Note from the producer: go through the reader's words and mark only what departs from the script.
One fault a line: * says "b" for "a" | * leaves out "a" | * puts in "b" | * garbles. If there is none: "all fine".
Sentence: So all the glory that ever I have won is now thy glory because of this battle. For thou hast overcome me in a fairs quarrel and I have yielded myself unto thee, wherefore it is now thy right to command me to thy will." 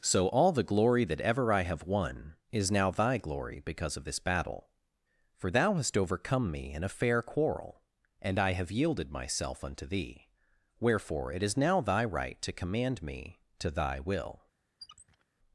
* says "fair" for "fairs"